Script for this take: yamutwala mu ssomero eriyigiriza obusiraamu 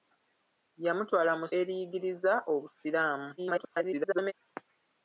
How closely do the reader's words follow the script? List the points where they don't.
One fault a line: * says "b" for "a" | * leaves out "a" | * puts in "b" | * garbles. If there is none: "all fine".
* leaves out "ssomero"
* garbles